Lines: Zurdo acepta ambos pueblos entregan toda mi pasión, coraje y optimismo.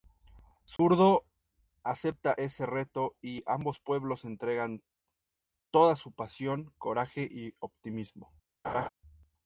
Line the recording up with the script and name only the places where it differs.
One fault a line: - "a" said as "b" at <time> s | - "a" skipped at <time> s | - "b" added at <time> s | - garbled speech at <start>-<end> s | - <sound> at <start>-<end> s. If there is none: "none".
- dropout at 0.8-0.8 s
- "ese reto y" added at 2.4 s
- "mi" said as "su" at 6.0 s
- laugh at 8.6-8.9 s